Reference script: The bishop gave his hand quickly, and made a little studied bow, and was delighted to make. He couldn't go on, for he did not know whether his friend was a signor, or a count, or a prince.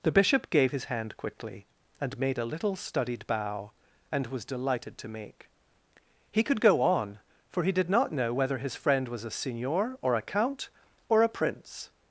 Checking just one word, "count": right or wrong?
right